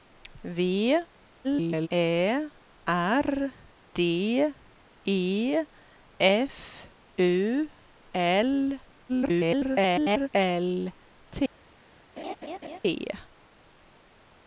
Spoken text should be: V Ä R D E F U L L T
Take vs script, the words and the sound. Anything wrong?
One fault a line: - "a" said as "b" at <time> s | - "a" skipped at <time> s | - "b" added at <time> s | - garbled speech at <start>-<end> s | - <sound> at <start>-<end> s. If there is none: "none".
- garbled speech at 1.4-1.9 s
- garbled speech at 9.1-10.3 s
- laugh at 12.2-12.8 s